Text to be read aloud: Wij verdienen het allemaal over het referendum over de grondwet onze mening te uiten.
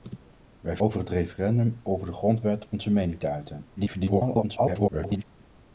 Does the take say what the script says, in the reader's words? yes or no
no